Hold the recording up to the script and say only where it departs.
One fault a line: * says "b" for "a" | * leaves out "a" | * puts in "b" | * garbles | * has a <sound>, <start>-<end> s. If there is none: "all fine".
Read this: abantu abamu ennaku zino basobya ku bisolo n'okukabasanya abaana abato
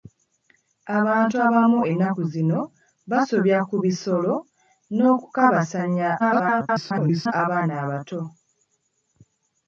* garbles